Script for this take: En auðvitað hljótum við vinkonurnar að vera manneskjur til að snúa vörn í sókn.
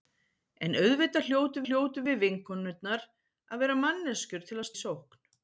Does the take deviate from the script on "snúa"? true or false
true